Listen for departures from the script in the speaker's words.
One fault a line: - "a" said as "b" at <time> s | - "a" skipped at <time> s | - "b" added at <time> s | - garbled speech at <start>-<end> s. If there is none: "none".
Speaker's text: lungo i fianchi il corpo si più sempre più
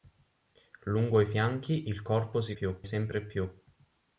none